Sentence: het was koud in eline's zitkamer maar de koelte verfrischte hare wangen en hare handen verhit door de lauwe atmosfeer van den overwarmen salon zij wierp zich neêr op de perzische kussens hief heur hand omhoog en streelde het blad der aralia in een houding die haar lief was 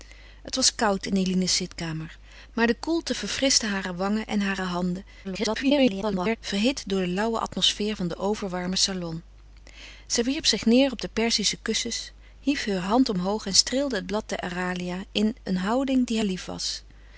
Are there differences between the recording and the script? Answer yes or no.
yes